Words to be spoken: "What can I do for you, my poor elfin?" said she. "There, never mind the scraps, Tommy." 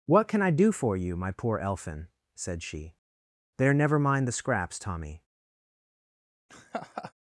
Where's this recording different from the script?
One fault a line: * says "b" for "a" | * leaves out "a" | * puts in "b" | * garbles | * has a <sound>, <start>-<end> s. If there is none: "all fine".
* has a laugh, 6.5-7.1 s